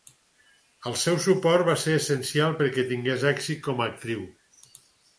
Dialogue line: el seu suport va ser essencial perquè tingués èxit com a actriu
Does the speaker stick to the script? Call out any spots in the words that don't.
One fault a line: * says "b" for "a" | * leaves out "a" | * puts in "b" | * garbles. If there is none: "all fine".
all fine